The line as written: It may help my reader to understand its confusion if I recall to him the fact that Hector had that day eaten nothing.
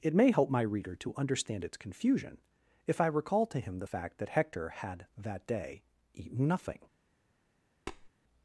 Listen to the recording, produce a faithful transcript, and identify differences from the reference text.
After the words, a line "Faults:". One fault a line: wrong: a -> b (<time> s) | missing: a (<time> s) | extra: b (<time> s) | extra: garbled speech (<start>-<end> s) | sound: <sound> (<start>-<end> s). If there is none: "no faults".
It may help my reader to understand its confusion if I recall to him the fact that Hector had that day eaten nothing.
Faults:
sound: tap (7.9-8.1 s)